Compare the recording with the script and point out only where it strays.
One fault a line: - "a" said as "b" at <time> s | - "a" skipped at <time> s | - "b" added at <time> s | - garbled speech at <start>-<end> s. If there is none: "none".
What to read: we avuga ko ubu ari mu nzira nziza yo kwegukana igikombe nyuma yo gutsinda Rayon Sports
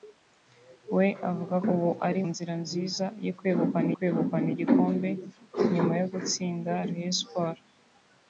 - "ko" skipped at 1.6 s
- "mu" skipped at 2.2 s
- "kwegukana" added at 3.9 s